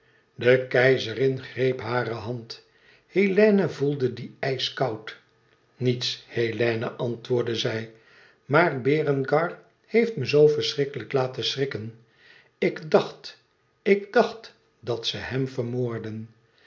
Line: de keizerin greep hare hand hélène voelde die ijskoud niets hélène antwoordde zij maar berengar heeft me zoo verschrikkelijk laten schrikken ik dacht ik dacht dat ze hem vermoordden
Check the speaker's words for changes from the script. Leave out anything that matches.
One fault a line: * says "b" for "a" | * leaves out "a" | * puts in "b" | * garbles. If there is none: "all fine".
all fine